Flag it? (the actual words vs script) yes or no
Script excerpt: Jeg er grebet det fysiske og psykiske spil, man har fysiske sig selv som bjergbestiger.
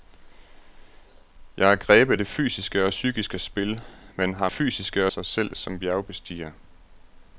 no